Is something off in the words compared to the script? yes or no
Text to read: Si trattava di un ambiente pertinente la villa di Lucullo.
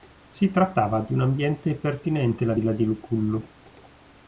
no